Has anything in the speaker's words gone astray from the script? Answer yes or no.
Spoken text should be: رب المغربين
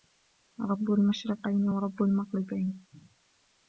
yes